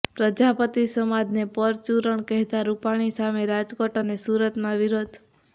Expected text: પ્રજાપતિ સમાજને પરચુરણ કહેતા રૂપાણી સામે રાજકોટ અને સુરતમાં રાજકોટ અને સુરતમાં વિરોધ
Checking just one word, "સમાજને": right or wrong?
right